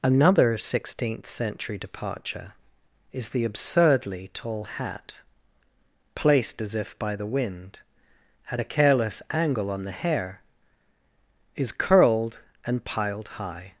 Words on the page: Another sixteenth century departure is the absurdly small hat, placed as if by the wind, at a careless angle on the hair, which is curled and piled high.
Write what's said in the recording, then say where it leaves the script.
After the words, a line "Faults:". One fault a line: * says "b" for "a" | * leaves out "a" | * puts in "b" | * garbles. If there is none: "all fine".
Another sixteenth century departure is the absurdly tall hat, placed as if by the wind, at a careless angle on the hair, is curled and piled high.
Faults:
* says "tall" for "small"
* leaves out "which"